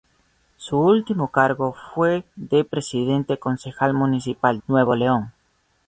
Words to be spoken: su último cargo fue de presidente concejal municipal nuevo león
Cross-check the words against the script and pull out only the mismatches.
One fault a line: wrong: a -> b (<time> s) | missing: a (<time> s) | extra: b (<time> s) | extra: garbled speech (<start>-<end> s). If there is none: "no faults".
no faults